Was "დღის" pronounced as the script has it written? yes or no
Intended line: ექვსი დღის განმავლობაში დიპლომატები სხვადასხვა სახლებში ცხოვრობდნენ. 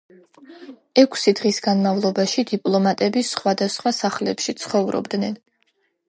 yes